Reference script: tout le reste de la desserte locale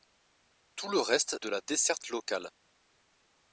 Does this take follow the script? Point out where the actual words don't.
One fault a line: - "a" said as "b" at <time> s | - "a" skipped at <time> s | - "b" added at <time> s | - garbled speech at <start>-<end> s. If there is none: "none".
none